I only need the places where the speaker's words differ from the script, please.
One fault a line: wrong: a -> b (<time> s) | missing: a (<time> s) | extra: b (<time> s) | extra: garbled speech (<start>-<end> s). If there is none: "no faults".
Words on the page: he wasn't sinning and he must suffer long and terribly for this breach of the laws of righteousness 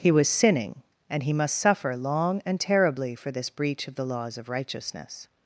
wrong: wasn't -> was (0.1 s)